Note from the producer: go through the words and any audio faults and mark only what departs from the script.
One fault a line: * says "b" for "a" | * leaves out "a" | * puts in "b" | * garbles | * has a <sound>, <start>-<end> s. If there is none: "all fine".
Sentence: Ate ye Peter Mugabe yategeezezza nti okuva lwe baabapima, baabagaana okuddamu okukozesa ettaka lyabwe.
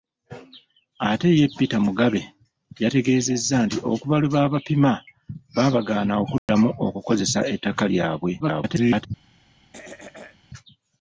* has a dropout, 6.4-6.5 s
* garbles
* has a throat clearing, 9.7-10.4 s